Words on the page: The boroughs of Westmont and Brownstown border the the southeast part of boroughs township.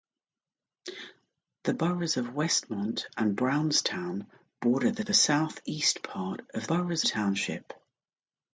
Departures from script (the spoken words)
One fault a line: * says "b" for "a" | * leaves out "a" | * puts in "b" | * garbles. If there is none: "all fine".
all fine